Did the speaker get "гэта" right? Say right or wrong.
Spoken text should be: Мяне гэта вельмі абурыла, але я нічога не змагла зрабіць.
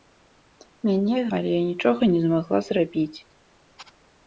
wrong